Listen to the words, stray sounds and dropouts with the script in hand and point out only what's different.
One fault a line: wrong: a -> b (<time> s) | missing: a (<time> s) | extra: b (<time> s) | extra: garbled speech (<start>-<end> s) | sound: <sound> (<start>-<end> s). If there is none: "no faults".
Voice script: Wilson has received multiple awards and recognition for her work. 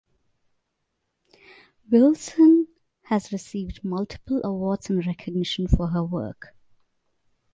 no faults